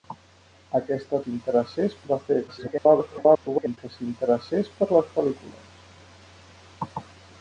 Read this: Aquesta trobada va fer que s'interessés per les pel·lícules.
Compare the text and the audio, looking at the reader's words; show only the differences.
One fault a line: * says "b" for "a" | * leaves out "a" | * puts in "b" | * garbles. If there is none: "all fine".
* says "s'interessés" for "trobada"
* garbles